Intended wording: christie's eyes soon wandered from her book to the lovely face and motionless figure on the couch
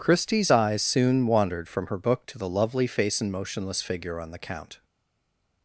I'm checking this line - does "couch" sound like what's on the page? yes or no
no